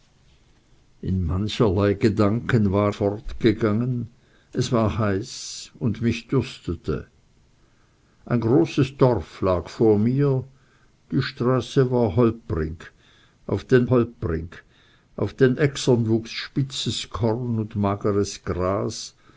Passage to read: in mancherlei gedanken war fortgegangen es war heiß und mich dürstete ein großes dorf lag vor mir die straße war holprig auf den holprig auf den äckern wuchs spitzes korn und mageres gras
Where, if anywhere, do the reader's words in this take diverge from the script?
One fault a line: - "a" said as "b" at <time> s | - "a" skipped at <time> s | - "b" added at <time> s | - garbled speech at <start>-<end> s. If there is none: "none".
none